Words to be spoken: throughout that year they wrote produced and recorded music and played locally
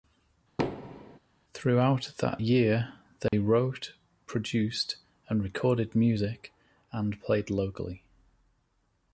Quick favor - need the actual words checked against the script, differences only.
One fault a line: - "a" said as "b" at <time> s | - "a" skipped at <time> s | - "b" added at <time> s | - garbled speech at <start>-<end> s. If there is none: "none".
none